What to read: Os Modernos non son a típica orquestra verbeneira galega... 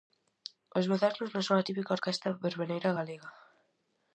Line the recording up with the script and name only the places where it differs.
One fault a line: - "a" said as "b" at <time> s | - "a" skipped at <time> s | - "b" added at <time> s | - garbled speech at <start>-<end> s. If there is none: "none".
none